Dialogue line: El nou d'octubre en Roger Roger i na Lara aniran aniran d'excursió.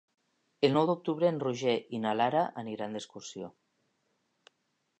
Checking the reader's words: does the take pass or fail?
fail